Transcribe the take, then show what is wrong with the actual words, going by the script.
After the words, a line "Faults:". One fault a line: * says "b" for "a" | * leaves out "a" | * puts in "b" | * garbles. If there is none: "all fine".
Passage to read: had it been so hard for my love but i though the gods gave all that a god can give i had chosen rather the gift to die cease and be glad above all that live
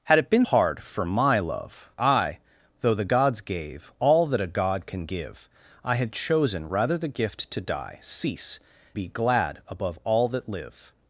had it been hard for my love i though the gods gave all that a god can give i had chosen rather the gift to die cease be glad above all that live
Faults:
* leaves out "so"
* leaves out "but"
* leaves out "and"